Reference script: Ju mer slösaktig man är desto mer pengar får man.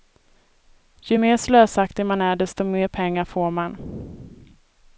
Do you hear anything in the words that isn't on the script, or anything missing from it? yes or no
no